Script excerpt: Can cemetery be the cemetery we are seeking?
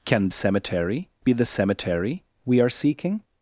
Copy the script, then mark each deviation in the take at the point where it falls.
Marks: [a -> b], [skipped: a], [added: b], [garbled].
Can cemetery be the cemetery we are seeking?